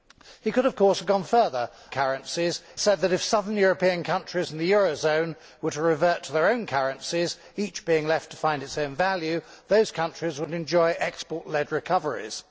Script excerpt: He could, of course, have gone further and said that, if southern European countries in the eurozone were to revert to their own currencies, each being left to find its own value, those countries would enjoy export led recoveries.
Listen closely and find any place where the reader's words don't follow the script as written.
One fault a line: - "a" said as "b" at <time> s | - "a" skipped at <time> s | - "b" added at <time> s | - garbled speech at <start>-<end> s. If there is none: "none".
- "and" said as "currencies" at 1.9 s